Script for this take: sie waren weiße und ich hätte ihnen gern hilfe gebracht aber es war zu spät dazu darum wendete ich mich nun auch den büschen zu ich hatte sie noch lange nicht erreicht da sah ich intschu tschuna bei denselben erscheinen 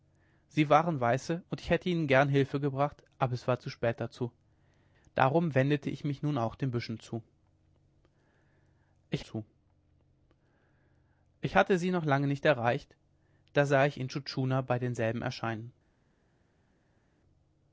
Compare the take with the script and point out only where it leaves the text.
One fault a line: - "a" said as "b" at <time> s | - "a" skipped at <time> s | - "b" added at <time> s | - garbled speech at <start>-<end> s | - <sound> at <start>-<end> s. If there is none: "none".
- "zu ich" added at 9.2 s